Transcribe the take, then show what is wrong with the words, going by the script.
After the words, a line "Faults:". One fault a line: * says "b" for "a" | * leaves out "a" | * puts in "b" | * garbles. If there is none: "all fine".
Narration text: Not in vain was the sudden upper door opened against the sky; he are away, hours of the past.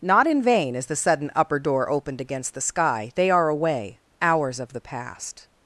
Not in vain is the sudden upper door opened against the sky; they are away, hours of the past.
Faults:
* says "is" for "was"
* says "they" for "he"